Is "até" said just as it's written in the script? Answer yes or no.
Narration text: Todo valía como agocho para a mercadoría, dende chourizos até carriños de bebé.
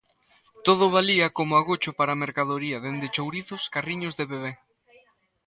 no